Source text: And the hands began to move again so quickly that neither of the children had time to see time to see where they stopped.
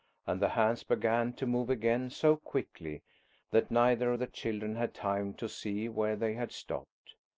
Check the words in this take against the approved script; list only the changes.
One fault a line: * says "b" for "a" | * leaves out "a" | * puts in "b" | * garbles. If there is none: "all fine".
* leaves out "time to see"
* puts in "had"